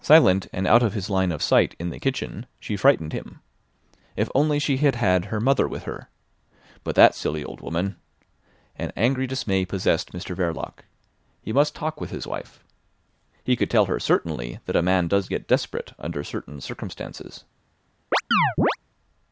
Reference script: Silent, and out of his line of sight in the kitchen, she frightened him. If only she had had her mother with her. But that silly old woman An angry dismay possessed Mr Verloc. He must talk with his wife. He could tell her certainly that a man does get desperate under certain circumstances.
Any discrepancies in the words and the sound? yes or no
yes